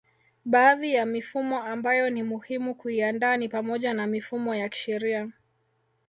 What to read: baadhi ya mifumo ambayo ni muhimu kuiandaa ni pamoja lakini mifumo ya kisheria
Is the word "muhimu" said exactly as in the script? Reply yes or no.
yes